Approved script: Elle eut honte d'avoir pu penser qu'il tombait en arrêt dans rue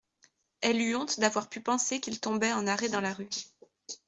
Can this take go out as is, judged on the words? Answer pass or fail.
fail